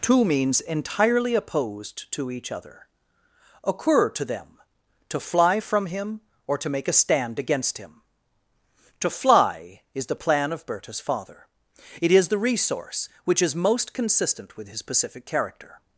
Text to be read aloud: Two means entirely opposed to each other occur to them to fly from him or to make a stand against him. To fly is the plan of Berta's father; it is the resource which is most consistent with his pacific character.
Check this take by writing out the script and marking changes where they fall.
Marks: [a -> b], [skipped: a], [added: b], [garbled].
Two means entirely opposed to each other occur to them to fly from him or to make a stand against him. To fly is the plan of Berta's father; it is the resource which is most consistent with his pacific character.